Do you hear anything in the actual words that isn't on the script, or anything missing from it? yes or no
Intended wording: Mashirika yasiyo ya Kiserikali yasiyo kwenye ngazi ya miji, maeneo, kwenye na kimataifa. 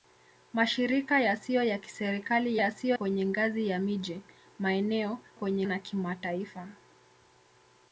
no